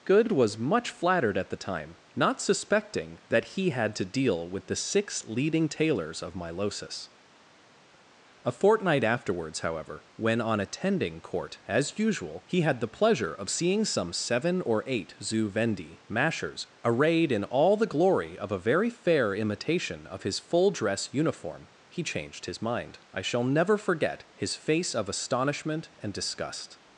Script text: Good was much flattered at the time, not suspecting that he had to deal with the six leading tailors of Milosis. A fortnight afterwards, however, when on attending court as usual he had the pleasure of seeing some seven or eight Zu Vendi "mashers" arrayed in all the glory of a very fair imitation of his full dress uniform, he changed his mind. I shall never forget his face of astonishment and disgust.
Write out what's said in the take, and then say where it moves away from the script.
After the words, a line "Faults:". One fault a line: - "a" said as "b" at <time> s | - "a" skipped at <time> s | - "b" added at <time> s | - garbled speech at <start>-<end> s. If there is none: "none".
Good was much flattered at the time, not suspecting that he had to deal with the six leading tailors of Milosis. A fortnight afterwards, however, when on attending court as usual he had the pleasure of seeing some seven or eight Zu Vendi "mashers" arrayed in all the glory of a very fair imitation of his full dress uniform, he changed his mind. I shall never forget his face of astonishment and disgust.
Faults:
none